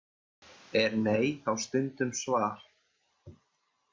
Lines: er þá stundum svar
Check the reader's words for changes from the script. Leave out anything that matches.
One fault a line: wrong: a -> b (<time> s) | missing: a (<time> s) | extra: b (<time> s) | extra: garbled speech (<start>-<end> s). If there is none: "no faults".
extra: nei (1.1 s)